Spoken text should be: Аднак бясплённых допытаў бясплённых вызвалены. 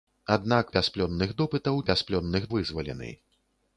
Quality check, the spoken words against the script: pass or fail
pass